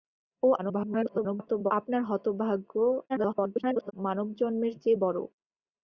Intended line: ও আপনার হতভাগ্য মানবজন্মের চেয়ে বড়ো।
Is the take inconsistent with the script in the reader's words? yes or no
yes